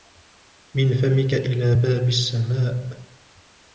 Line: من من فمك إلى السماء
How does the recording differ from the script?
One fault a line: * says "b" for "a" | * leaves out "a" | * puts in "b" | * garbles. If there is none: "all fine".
* leaves out "من"
* puts in "باب"